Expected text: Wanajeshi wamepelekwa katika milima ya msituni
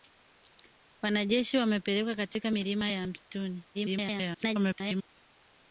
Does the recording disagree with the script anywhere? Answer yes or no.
yes